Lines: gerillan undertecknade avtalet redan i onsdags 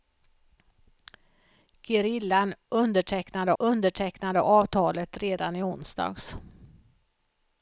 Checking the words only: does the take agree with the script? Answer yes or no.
no